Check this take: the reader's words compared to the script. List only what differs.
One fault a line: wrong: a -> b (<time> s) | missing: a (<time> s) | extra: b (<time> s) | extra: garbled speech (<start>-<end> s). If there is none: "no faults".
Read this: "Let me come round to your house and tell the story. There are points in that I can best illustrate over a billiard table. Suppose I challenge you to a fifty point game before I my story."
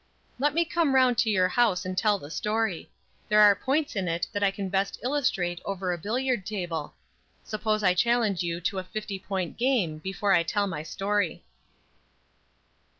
extra: it (4.1 s)
extra: tell (10.4 s)